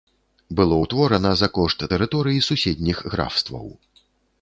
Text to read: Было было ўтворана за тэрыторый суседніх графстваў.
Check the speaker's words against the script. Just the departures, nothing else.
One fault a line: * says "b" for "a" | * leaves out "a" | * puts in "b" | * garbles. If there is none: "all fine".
* leaves out "было"
* puts in "кошт"